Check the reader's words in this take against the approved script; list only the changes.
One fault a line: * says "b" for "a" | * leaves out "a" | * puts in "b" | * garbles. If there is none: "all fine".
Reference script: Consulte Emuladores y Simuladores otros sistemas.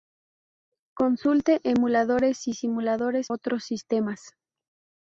all fine